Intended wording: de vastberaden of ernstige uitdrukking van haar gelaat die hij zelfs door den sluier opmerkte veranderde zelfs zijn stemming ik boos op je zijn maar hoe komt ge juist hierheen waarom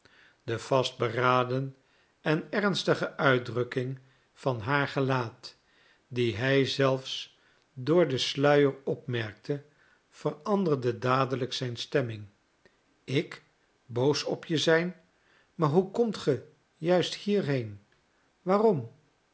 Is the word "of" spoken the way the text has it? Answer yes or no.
no